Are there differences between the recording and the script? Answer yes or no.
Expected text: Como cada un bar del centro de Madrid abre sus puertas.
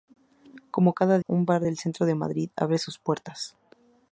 no